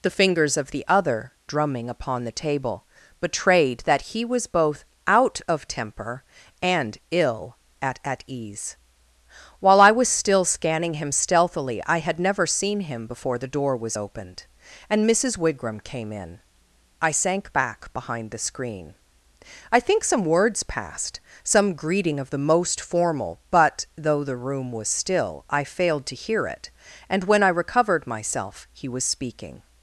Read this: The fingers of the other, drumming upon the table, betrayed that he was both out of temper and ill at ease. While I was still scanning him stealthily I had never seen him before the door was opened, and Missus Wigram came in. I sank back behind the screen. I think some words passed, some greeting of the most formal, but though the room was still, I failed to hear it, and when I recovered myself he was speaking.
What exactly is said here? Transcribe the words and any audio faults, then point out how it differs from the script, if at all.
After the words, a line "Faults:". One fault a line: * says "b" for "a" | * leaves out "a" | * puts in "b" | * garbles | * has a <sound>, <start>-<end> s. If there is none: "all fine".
The fingers of the other, drumming upon the table, betrayed that he was both out of temper and ill at at ease. While I was still scanning him stealthily I had never seen him before the door was opened, and Missus Wigram came in. I sank back behind the screen. I think some words passed, some greeting of the most formal, but though the room was still, I failed to hear it, and when I recovered myself he was speaking.
Faults:
* puts in "at"